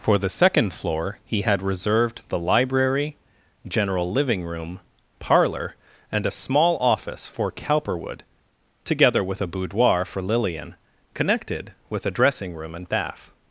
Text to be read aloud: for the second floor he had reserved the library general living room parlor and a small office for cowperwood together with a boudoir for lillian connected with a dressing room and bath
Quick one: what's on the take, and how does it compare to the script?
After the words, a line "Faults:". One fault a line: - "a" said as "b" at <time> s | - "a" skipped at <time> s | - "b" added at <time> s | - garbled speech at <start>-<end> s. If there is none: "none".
for the second floor he had reserved the library general living room parlor and a small office for cowperwood together with a boudoir for lillian connected with a dressing room and bath
Faults:
none